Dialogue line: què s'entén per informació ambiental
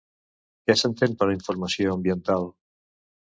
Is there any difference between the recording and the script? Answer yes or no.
no